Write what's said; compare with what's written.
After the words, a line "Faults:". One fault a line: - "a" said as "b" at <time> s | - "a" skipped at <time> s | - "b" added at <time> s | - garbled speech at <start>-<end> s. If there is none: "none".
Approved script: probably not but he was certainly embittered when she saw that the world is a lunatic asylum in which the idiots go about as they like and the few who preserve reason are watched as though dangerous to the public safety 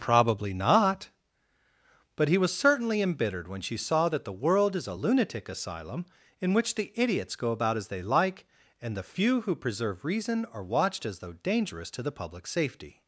probably not but he was certainly embittered when she saw that the world is a lunatic asylum in which the idiots go about as they like and the few who preserve reason are watched as though dangerous to the public safety
Faults:
none